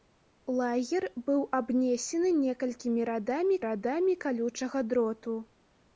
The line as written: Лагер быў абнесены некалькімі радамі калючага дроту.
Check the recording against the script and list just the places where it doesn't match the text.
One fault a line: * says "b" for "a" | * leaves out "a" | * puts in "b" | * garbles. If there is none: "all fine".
* puts in "радамі"